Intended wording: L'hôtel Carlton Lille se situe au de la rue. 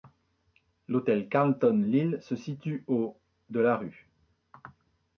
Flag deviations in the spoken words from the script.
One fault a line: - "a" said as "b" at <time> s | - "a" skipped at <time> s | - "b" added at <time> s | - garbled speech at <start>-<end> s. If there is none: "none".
none